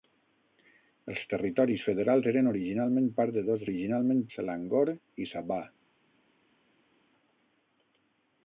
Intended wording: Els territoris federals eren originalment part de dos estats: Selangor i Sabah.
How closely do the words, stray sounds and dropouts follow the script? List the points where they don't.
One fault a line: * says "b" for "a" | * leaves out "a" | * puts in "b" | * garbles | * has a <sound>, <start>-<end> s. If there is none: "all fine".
* says "originalment" for "estats"